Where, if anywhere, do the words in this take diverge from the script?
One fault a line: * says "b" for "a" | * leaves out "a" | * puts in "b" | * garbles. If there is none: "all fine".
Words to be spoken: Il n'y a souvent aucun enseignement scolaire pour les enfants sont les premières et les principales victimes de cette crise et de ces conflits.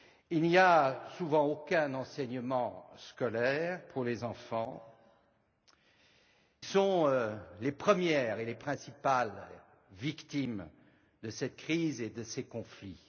all fine